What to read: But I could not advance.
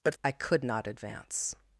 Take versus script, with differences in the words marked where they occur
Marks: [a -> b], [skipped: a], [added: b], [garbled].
But I could not advance.